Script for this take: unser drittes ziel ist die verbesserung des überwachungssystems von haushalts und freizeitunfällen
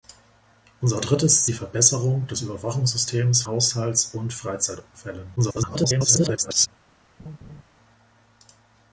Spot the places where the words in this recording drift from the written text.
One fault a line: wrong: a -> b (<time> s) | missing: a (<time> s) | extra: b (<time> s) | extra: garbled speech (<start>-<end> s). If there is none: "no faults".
missing: ziel ist (1.5 s)
missing: von (3.4 s)
extra: garbled speech (5.4-6.7 s)